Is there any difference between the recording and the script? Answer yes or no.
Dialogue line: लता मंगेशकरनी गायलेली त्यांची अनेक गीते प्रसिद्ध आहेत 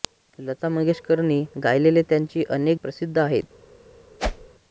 yes